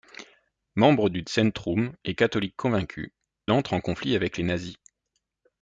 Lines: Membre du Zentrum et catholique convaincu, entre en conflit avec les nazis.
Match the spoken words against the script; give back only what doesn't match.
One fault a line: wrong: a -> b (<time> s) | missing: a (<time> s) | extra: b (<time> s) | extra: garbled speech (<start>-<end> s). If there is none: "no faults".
no faults